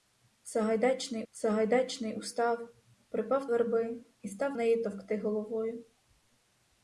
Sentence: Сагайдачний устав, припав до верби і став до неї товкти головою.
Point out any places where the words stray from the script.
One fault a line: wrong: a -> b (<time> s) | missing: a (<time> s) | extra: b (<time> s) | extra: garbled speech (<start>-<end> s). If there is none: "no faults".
extra: сагайдачний (1.3 s)
missing: до (3.5 s)
missing: до (4.5 s)